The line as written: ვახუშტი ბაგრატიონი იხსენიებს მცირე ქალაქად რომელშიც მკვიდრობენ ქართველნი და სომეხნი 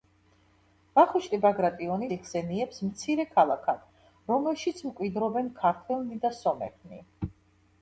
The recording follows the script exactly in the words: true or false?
true